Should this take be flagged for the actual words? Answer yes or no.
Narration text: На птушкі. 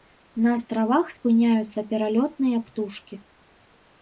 yes